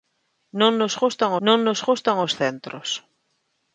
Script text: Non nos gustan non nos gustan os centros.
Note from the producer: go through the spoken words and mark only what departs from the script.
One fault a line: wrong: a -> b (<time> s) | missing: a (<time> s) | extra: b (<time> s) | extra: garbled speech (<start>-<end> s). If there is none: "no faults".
no faults